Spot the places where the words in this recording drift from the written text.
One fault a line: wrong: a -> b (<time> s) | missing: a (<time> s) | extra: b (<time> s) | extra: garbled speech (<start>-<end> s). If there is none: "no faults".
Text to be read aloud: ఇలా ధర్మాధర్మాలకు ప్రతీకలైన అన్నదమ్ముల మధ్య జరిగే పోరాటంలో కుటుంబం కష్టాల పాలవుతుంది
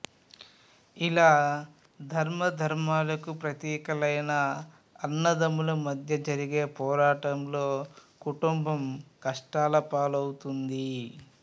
no faults